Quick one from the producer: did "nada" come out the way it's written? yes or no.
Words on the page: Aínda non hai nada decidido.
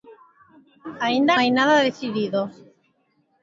yes